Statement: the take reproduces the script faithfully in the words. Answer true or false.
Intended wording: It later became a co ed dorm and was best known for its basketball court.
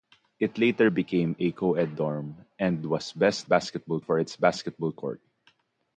false